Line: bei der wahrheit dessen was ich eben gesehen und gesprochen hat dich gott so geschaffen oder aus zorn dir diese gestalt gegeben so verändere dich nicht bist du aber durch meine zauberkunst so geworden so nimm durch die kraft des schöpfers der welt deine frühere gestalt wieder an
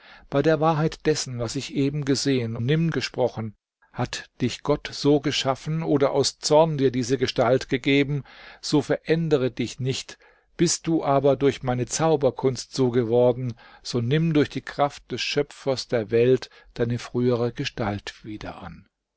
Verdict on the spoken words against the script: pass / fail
fail